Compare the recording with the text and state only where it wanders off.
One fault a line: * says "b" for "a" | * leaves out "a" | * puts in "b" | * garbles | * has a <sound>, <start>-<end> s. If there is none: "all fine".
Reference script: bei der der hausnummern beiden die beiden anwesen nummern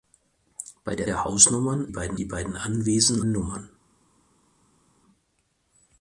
all fine